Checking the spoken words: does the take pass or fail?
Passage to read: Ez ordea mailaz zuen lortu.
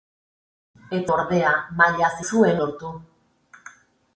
pass